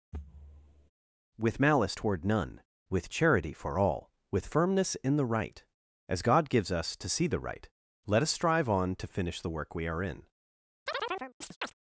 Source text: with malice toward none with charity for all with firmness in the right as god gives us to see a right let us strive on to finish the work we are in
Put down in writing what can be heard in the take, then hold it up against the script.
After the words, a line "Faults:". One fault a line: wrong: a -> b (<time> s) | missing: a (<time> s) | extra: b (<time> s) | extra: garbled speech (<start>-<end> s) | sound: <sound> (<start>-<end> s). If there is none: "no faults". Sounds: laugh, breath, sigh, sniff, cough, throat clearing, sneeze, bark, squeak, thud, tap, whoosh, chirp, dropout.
with malice toward none with charity for all with firmness in the right as god gives us to see the right let us strive on to finish the work we are in
Faults:
sound: thud (0.1-0.9 s)
wrong: a -> the (7.3 s)
sound: chirp (10.9-11.7 s)